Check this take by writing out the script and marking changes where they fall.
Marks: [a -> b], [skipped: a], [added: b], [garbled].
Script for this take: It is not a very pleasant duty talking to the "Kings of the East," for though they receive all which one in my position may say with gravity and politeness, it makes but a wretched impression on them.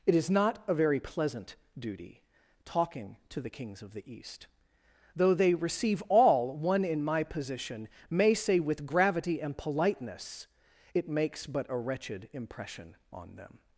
It is not a very pleasant duty talking to the "Kings of the East," [skipped: for] though they receive all [skipped: which] one in my position may say with gravity and politeness, it makes but a wretched impression on them.